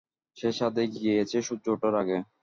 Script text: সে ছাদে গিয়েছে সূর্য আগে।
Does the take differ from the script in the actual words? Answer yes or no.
yes